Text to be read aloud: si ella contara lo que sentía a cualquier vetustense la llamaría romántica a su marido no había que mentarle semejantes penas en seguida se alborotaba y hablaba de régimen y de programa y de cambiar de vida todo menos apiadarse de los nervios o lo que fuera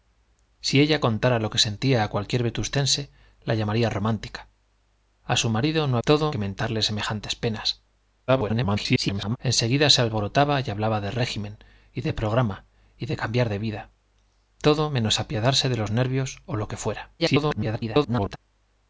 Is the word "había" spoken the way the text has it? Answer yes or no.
no